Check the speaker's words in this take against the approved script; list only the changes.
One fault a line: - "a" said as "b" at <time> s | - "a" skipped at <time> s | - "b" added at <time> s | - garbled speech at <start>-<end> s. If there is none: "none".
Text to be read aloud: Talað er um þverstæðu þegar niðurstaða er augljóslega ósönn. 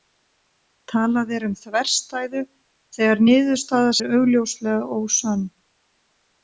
none